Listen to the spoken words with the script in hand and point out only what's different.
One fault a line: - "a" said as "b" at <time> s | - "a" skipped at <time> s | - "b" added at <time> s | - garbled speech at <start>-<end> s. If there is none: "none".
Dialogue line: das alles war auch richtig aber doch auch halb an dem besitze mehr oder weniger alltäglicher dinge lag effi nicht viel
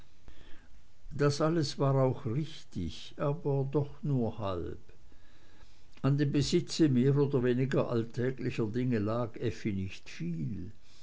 - "auch" said as "nur" at 4.0 s